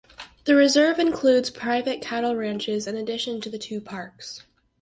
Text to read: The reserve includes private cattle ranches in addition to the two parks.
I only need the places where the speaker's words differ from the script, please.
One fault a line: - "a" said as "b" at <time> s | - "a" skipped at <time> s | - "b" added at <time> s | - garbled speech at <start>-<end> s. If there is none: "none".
none